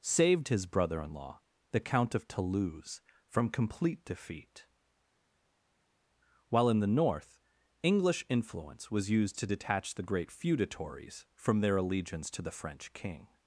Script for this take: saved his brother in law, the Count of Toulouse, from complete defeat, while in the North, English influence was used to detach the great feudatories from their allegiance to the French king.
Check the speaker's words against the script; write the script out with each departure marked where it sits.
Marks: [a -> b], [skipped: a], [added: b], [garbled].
saved his brother in law, the Count of Toulouse, from complete defeat, while in the North, English influence was used to detach the great feudatories from their allegiance to the French king.